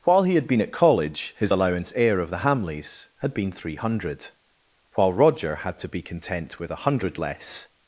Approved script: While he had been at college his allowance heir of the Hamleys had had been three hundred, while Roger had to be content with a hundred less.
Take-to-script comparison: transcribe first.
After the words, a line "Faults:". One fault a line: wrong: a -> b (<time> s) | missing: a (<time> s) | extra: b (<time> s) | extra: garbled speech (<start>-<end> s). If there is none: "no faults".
While he had been at college his allowance heir of the Hamleys had been three hundred, while Roger had to be content with a hundred less.
Faults:
missing: had (3.3 s)